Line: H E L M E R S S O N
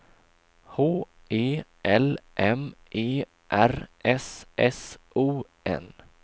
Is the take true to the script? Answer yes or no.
yes